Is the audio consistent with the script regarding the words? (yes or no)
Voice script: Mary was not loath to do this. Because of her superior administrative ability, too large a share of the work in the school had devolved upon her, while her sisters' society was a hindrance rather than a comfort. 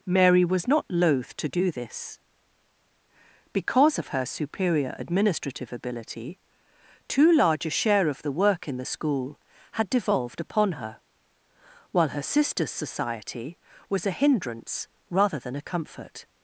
yes